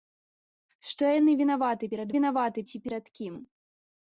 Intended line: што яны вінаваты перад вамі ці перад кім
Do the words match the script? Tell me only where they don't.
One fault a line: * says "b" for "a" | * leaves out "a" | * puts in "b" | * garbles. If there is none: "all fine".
* says "вінаваты" for "вамі"